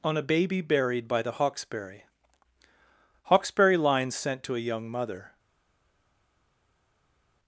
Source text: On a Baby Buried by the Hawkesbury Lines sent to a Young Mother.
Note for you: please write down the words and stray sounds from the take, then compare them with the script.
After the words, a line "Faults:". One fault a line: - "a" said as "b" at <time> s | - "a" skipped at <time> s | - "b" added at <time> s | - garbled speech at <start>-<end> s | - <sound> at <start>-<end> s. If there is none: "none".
On a Baby Buried by the Hawkesbury Hawkesbury Lines sent to a Young Mother.
Faults:
- "Hawkesbury" added at 3.2 s